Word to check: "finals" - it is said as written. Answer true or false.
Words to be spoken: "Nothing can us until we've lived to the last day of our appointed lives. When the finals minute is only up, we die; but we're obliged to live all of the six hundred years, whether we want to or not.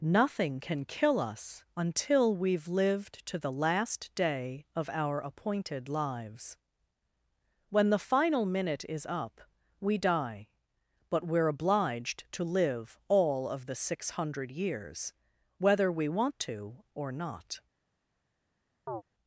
false